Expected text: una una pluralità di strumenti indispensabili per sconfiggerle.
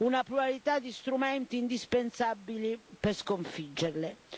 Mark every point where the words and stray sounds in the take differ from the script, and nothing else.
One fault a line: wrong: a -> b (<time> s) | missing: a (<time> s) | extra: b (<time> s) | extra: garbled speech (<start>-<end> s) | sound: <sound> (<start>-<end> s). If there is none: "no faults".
missing: una (0.2 s)